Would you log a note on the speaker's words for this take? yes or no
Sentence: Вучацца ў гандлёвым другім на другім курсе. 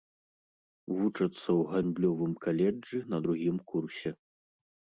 yes